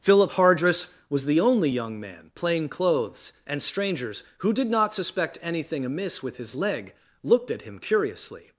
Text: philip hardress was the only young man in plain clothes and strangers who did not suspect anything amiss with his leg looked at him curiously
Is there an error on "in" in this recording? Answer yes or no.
yes